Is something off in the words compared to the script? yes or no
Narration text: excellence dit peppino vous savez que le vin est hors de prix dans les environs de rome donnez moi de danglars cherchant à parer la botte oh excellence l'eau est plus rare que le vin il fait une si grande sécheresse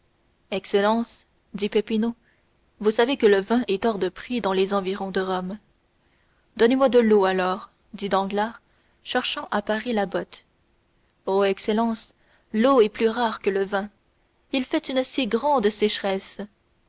yes